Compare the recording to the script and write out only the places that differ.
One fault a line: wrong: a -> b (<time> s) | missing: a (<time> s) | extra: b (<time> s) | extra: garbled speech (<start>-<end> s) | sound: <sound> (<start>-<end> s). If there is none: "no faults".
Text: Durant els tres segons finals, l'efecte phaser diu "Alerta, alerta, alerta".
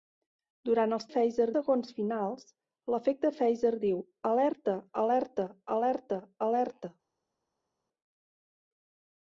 wrong: tres -> phaser (1.1 s)
extra: alerta (6.5 s)